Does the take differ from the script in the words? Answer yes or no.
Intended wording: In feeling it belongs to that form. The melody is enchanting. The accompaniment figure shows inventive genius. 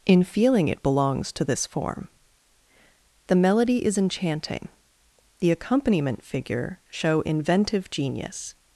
yes